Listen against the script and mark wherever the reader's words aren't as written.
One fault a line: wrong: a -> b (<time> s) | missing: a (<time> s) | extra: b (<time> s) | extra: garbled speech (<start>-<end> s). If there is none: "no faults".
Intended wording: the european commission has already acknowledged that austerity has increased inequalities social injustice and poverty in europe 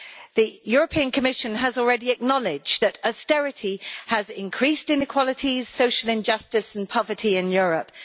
no faults